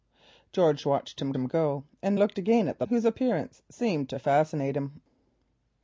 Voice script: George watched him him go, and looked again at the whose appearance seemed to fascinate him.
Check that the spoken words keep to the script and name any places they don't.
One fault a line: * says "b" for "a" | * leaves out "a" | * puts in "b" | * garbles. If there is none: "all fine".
all fine